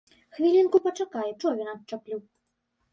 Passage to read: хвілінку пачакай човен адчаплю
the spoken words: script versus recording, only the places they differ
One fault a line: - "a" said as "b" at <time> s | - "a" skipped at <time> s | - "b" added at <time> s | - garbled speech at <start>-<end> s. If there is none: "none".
none